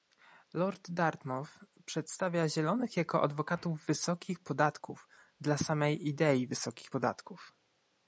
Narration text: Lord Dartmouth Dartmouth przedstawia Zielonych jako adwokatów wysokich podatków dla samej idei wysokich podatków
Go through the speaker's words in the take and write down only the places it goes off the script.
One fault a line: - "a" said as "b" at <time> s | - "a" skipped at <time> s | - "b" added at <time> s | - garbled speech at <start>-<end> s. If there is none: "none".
- "Dartmouth" skipped at 1.5 s